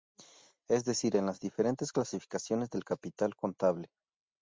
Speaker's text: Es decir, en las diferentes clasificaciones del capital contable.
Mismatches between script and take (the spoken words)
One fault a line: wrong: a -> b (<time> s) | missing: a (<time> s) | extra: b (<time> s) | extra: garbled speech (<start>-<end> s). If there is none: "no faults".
no faults